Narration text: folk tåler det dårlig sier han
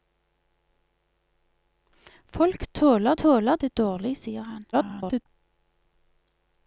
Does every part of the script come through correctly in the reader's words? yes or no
no